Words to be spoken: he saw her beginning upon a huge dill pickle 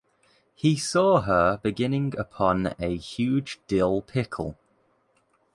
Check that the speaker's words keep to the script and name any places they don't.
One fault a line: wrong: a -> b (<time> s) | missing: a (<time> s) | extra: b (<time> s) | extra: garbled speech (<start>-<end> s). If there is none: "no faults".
no faults